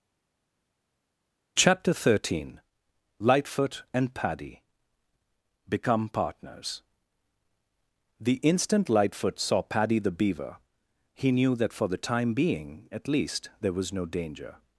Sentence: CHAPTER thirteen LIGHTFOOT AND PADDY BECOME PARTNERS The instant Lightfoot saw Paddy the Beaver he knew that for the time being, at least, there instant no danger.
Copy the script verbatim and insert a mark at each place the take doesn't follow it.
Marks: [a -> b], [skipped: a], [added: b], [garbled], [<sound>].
CHAPTER thirteen LIGHTFOOT AND PADDY BECOME PARTNERS The instant Lightfoot saw Paddy the Beaver he knew that for the time being, at least, there [instant -> was] no danger.